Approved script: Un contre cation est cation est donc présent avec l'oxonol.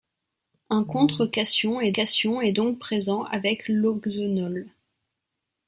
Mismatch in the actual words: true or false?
false